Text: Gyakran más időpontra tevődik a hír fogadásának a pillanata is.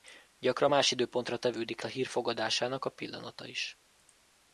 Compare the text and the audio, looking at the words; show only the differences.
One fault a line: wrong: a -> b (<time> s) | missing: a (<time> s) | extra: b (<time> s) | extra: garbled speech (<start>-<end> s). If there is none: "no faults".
no faults